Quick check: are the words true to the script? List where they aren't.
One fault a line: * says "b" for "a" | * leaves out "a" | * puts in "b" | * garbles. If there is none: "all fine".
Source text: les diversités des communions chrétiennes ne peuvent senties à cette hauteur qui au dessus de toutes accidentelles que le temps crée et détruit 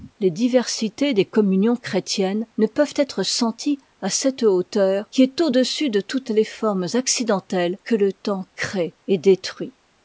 * puts in "être"
* puts in "est"
* puts in "les formes"